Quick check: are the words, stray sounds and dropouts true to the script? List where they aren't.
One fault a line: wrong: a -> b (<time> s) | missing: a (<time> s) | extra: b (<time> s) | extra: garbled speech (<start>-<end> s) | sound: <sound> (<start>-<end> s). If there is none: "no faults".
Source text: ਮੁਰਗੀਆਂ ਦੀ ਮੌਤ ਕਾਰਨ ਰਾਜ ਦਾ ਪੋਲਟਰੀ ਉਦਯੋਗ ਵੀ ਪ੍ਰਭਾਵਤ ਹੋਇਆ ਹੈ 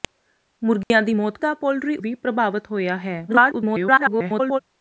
sound: dropout (0.8-0.9 s)
missing: ਕਾਰਨ ਰਾਜ (1.4 s)
missing: ਉਦਯੋਗ (2.0 s)
extra: garbled speech (3.3-4.6 s)